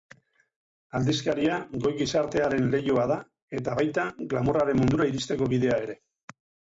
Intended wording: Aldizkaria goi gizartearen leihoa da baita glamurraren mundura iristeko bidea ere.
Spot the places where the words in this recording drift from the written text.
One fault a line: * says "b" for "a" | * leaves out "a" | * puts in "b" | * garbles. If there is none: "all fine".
* puts in "eta"